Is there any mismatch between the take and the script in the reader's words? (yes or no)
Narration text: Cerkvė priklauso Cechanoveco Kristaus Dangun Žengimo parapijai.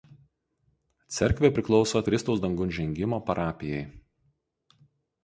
yes